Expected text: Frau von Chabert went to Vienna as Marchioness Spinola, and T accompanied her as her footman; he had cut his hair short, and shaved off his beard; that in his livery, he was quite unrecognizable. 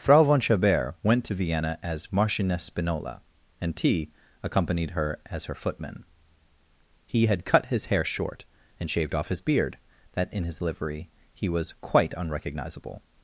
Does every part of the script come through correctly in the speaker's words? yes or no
yes